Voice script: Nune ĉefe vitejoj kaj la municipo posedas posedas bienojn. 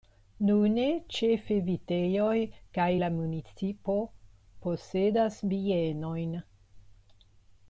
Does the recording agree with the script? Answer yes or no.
no